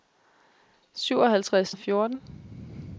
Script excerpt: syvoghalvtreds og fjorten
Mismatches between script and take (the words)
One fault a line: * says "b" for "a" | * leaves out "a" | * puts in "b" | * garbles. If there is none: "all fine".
all fine